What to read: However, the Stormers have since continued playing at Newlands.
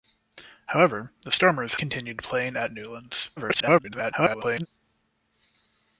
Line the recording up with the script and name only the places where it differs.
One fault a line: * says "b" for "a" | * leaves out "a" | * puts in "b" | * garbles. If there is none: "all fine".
* leaves out "have since"
* garbles